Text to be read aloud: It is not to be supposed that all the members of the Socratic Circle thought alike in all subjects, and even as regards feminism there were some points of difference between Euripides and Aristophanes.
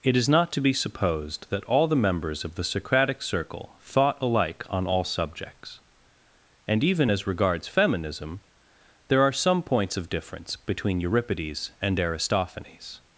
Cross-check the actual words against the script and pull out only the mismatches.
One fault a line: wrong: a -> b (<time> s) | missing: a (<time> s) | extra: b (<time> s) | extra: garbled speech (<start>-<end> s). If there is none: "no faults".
wrong: in -> on (4.7 s)
wrong: were -> are (9.2 s)